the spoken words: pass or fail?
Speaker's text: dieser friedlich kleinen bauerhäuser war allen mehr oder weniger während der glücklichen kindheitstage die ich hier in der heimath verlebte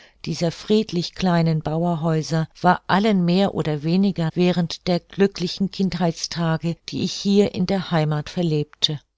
pass